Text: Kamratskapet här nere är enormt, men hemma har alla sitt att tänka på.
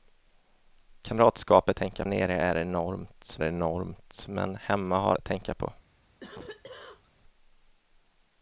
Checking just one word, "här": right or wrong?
wrong